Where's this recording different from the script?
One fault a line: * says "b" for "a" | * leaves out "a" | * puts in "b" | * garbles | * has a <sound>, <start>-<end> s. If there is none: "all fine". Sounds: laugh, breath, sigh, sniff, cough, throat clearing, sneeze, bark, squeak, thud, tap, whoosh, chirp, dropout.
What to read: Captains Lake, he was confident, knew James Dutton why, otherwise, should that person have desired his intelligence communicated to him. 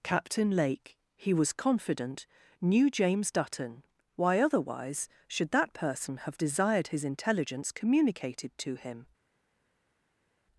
* says "Captain" for "Captains"